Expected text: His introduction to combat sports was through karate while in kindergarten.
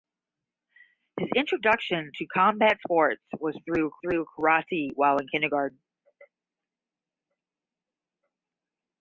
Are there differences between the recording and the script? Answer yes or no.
yes